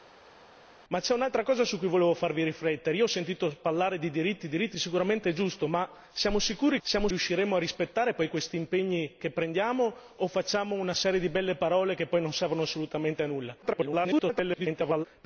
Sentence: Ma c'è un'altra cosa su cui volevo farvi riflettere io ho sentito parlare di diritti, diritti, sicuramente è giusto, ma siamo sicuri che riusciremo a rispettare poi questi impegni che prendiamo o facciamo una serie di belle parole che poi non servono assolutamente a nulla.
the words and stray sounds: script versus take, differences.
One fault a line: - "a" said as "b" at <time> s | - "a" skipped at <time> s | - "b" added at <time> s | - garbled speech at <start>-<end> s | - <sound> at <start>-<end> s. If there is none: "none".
- "che" said as "siamo" at 6.8 s
- garbled speech at 13.6-15.1 s